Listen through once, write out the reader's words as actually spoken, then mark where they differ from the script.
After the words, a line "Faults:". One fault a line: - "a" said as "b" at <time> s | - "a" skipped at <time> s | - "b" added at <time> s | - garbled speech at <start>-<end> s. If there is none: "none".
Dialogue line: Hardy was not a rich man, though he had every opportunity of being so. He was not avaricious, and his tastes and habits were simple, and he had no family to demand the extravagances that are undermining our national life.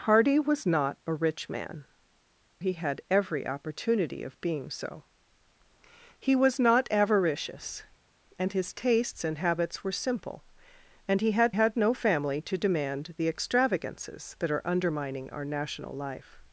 Hardy was not a rich man, he had every opportunity of being so. He was not avaricious, and his tastes and habits were simple, and he had had no family to demand the extravagances that are undermining our national life.
Faults:
- "though" skipped at 1.9 s
- "had" added at 11.5 s